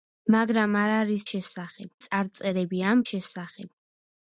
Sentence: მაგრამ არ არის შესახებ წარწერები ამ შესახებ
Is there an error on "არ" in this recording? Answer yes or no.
no